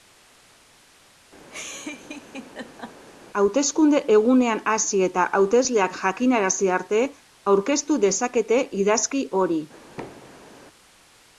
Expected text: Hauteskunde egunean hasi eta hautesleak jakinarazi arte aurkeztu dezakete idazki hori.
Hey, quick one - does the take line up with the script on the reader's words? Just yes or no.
yes